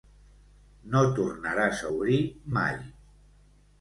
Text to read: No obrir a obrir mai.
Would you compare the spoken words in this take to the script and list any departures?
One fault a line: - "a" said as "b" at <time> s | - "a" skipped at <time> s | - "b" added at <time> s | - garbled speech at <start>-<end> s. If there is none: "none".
- "obrir" said as "tornaràs" at 1.2 s